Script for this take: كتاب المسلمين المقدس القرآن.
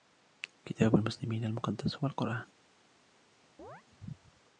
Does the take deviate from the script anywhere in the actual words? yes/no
yes